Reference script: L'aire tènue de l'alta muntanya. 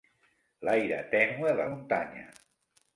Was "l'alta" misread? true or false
true